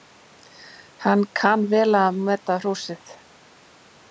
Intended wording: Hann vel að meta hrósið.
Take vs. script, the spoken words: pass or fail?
fail